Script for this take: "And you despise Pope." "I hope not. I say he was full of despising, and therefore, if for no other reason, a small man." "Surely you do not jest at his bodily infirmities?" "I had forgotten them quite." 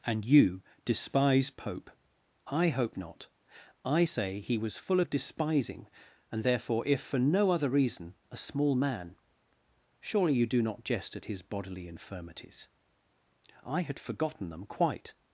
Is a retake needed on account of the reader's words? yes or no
no